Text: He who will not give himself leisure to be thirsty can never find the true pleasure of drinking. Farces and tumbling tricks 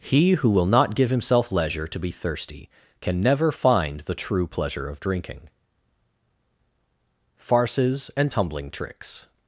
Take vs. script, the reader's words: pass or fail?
pass